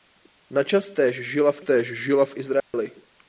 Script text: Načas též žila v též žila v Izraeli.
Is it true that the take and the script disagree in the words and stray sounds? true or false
true